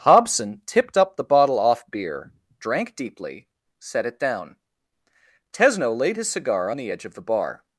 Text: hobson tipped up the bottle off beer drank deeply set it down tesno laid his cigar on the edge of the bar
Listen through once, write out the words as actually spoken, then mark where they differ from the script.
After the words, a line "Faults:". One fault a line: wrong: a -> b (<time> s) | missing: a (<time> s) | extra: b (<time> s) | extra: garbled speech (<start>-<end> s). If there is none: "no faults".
hobson tipped up the bottle off beer drank deeply set it down tesno laid his cigar on the edge of the bar
Faults:
no faults